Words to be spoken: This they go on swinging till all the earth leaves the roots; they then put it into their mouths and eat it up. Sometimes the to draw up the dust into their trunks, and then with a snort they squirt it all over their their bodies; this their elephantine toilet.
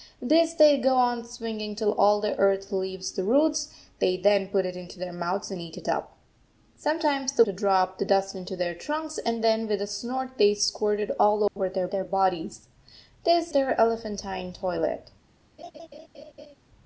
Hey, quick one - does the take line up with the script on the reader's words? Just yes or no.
yes